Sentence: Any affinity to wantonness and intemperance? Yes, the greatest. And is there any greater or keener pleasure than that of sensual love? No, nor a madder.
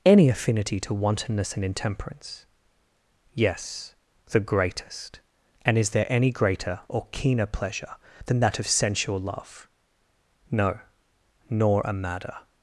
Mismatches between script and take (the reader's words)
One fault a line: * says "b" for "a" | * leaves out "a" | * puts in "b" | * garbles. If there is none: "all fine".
all fine